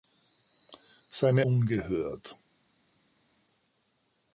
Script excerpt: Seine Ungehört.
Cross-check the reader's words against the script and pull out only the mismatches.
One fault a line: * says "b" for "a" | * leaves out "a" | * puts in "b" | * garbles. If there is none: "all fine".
all fine